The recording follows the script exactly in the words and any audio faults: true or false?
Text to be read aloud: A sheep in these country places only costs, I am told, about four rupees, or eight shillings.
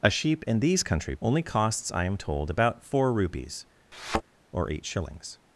false